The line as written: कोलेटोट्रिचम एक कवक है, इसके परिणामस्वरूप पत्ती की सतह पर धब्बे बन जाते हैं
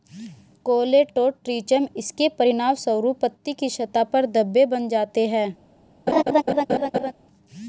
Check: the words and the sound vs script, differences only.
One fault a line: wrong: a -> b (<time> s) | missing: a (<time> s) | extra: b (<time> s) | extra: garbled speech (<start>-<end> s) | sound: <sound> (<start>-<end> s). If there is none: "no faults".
missing: एक कवक है (1.9 s)
sound: laugh (6.1-7.1 s)